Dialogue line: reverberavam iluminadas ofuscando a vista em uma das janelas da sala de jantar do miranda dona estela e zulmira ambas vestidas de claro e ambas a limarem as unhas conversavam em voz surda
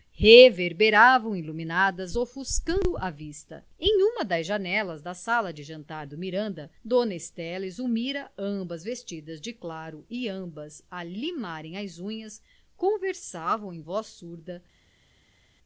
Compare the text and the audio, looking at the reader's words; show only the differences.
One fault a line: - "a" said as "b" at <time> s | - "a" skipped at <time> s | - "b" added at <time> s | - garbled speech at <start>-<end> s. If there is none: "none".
none